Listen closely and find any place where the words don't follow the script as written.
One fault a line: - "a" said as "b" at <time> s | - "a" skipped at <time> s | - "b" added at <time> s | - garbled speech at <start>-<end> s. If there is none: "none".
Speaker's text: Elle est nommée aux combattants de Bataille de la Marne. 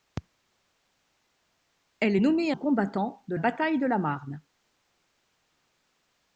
none